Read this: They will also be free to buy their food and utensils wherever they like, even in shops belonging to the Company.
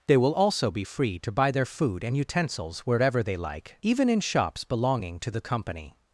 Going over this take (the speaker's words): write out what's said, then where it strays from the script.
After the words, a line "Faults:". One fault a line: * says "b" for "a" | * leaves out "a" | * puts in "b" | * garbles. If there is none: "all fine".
They will also be free to buy their food and utensils wherever they like, even in shops belonging to the Company.
Faults:
all fine